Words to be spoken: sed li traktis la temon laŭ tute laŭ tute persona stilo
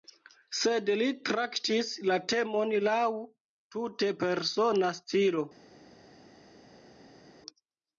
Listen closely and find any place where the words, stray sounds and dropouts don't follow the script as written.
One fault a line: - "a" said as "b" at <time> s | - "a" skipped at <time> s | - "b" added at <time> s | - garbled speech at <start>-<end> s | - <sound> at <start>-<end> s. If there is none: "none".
- "laŭ tute" skipped at 4.1 s